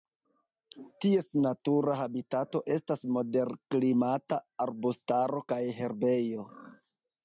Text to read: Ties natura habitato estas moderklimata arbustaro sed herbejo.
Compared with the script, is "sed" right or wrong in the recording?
wrong